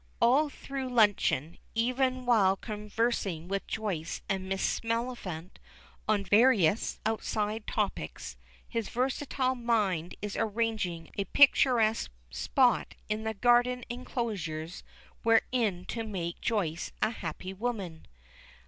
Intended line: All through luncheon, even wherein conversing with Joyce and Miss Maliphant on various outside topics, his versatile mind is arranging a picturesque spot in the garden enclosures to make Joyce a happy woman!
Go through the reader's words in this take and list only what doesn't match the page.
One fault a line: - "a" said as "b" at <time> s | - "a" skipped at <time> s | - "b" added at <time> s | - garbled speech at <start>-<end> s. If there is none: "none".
- "wherein" said as "while" at 2.2 s
- "wherein" added at 15.2 s